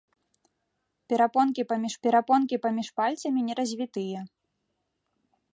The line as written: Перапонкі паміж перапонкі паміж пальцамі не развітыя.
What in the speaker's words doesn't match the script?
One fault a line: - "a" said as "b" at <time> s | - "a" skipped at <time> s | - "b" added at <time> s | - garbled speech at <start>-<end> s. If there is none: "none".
none